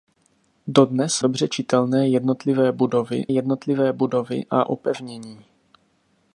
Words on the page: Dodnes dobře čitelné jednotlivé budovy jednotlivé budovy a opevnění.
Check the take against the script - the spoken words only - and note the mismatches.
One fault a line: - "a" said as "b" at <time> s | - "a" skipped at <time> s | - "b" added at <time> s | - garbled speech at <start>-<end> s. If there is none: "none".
none